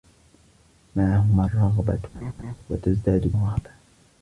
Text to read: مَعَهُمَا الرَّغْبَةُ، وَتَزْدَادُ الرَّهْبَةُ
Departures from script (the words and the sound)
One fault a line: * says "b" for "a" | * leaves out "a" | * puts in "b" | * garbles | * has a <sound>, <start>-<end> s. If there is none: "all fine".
* has a laugh, 2.1-2.5 s